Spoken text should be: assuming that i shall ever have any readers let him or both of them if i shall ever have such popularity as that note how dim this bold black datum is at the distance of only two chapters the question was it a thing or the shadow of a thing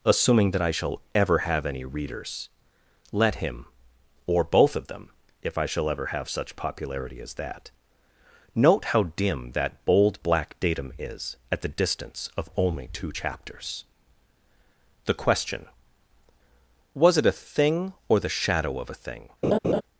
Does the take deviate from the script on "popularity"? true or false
false